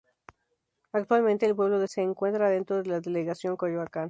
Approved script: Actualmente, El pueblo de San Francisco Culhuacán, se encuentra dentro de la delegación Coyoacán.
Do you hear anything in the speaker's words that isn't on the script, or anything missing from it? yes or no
yes